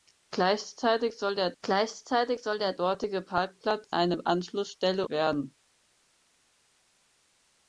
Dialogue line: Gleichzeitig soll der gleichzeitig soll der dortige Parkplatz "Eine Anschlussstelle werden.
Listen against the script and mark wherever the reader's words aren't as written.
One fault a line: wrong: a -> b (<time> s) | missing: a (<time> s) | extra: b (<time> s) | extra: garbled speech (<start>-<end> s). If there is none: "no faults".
no faults